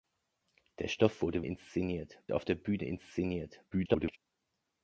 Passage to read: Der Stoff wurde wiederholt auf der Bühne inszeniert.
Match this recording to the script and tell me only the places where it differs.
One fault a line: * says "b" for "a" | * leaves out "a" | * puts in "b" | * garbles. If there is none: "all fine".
* says "inszeniert" for "wiederholt"
* garbles